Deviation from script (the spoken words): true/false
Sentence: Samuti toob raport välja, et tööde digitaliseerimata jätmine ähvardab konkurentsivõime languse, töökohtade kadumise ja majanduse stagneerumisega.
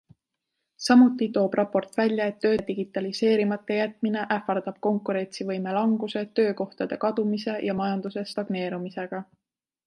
false